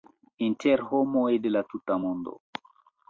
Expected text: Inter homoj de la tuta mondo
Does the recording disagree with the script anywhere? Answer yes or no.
no